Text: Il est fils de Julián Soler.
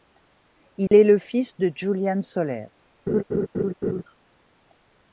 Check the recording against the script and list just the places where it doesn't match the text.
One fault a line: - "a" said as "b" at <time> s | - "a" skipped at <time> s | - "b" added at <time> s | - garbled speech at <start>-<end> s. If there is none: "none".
- "le" added at 1.0 s